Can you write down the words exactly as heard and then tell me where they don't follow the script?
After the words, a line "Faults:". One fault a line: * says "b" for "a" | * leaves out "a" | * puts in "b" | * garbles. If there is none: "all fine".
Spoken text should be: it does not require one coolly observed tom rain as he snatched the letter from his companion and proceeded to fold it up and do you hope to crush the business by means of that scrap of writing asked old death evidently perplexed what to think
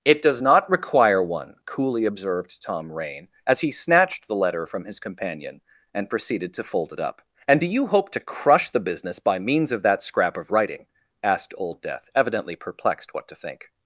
it does not require one coolly observed tom rain as he snatched the letter from his companion and proceeded to fold it up and do you hope to crush the business by means of that scrap of writing asked old death evidently perplexed what to think
Faults:
all fine